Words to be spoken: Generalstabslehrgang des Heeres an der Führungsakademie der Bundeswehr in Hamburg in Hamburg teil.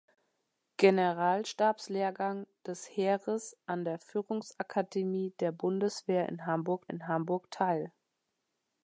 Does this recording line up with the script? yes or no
yes